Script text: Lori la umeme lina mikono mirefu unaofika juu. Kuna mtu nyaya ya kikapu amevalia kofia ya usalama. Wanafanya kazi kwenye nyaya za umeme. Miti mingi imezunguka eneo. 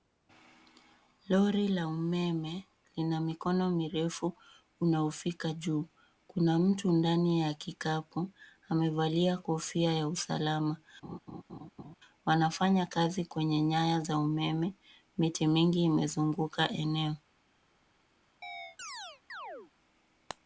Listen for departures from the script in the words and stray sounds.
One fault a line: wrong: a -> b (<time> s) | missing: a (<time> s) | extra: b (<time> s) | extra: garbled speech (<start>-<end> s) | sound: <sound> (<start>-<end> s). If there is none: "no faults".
wrong: nyaya -> ndani (6.9 s)
sound: laugh (11.0-12.0 s)
sound: chirp (18.4-19.7 s)